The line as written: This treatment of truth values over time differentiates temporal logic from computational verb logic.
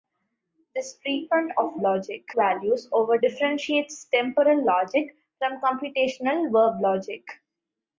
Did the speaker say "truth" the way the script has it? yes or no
no